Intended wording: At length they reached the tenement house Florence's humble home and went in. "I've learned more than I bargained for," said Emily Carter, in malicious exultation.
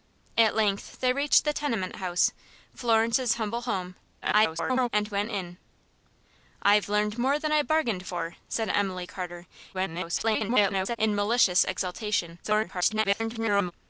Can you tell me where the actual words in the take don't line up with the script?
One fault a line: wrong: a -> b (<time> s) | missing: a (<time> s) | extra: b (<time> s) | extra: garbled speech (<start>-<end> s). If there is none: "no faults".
extra: garbled speech (4.2-4.9 s)
extra: garbled speech (9.7-11.0 s)
extra: garbled speech (12.4-13.7 s)